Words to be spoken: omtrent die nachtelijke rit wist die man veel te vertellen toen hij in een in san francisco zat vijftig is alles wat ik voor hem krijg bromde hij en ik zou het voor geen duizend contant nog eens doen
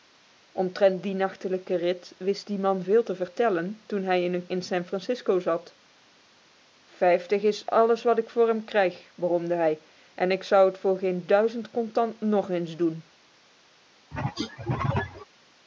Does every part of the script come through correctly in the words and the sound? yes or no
no